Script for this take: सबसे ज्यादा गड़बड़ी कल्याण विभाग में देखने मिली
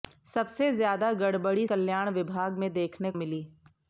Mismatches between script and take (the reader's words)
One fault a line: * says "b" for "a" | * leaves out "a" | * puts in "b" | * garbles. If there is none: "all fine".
all fine